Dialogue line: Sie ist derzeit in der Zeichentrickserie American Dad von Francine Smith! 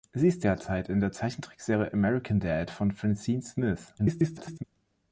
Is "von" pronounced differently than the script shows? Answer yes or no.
no